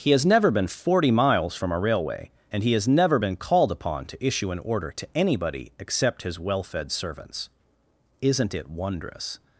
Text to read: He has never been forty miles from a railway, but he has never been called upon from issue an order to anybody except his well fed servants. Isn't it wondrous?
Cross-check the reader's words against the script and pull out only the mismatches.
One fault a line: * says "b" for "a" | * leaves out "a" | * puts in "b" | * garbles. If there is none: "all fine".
* says "and" for "but"
* says "to" for "from"